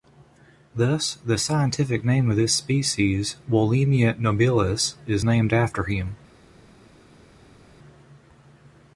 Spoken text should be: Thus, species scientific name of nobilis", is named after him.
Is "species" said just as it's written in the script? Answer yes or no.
no